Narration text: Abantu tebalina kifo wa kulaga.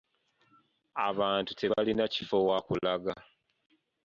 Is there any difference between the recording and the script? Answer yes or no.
no